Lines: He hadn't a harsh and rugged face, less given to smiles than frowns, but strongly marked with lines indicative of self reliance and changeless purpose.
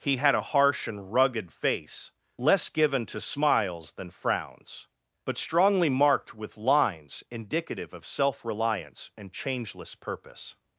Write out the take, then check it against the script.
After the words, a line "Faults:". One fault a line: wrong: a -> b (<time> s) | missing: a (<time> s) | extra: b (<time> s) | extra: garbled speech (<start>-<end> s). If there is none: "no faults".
He had a harsh and rugged face, less given to smiles than frowns, but strongly marked with lines indicative of self reliance and changeless purpose.
Faults:
wrong: hadn't -> had (0.2 s)